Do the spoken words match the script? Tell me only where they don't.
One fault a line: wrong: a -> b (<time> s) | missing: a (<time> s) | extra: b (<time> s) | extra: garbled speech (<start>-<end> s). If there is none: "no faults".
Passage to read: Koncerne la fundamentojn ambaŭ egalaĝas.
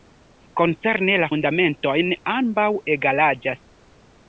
no faults